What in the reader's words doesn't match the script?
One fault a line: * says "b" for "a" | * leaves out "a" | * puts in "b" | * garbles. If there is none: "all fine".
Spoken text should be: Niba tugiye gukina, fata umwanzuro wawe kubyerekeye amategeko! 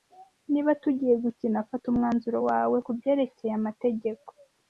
all fine